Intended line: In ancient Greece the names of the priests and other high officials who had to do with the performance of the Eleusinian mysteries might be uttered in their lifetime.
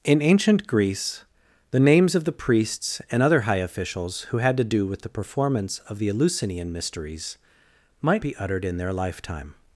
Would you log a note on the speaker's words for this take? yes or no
no